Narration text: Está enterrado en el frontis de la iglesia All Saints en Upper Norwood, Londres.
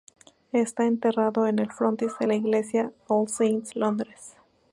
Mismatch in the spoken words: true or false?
true